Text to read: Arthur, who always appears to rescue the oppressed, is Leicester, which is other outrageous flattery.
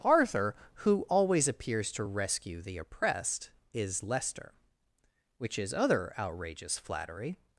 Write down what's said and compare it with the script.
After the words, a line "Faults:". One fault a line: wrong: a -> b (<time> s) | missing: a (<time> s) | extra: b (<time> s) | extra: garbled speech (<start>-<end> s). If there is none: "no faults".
Arthur, who always appears to rescue the oppressed, is Leicester, which is other outrageous flattery.
Faults:
no faults